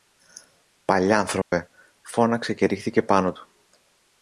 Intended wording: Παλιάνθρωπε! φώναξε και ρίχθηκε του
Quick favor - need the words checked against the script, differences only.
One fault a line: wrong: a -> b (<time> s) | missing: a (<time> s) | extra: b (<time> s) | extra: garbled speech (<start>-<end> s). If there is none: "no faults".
extra: πάνω (3.0 s)